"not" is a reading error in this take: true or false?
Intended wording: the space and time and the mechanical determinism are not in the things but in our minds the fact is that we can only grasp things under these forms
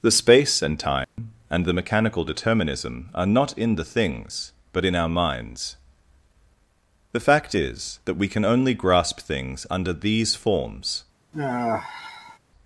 false